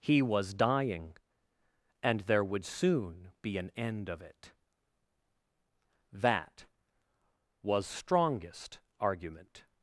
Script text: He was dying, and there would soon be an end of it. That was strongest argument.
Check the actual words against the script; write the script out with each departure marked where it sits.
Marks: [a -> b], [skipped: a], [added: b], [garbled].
He was dying, and there would soon be an end of it. That was strongest argument.